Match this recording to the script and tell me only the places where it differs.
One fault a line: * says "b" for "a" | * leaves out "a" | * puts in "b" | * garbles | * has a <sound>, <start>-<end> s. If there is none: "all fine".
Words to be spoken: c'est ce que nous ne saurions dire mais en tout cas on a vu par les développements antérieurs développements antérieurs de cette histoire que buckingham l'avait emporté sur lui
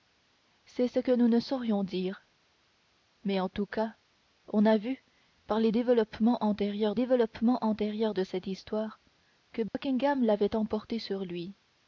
* has a dropout, 9.7-9.7 s